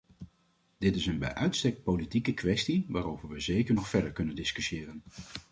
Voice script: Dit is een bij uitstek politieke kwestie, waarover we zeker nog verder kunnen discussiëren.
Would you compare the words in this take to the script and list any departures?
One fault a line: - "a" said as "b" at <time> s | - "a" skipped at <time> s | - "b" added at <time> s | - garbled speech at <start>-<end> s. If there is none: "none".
none